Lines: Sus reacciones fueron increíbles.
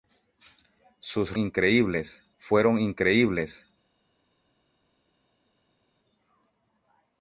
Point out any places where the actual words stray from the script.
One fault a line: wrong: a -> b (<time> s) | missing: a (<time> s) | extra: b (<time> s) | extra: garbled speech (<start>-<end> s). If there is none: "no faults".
wrong: reacciones -> increíbles (1.4 s)